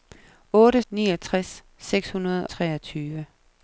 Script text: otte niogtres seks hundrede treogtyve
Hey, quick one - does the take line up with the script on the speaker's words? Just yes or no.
yes